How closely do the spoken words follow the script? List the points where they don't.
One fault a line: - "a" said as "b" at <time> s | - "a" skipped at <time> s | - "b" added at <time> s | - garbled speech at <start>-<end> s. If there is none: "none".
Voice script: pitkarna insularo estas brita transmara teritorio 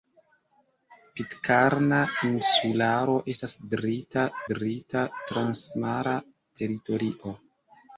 - "brita" added at 4.5 s